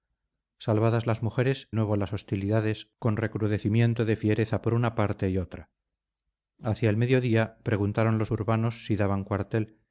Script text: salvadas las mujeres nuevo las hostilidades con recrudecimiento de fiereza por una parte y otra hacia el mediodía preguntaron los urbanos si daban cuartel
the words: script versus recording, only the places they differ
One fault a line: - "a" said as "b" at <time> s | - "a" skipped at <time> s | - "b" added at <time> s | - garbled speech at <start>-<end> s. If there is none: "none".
none